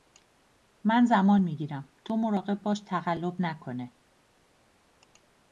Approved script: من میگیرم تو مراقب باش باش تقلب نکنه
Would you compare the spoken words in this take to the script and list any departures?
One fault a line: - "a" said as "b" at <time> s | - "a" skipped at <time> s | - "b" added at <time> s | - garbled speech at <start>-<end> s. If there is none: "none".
- "زمان" added at 1.1 s
- "باش" skipped at 2.8 s